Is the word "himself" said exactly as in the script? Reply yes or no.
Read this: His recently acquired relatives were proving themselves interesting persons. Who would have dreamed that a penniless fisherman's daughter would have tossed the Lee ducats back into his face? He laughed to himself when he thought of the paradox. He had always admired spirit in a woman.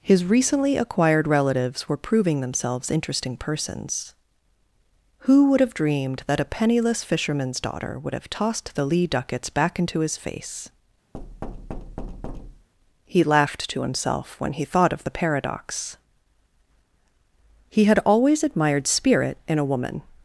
yes